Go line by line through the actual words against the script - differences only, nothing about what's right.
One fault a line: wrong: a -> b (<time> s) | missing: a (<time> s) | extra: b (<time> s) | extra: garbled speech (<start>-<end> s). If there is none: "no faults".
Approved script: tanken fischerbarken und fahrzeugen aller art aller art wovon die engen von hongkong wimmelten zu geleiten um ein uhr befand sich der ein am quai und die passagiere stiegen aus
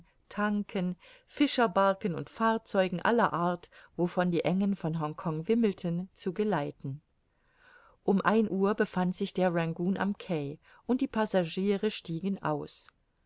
missing: aller art (3.7 s)
wrong: ein -> rangoon (9.5 s)